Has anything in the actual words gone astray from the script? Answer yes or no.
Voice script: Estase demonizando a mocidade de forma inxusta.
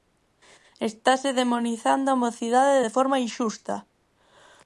no